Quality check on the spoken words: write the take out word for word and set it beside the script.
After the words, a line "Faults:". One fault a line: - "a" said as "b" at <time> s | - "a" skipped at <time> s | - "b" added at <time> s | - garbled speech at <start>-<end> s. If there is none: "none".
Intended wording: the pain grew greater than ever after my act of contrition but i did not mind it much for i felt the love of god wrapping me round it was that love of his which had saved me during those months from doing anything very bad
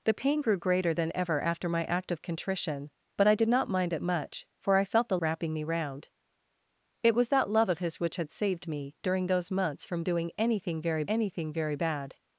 the pain grew greater than ever after my act of contrition but i did not mind it much for i felt the wrapping me round it was that love of his which had saved me during those months from doing anything very anything very bad
Faults:
- "love of god" skipped at 5.2 s
- "anything very" added at 11.1 s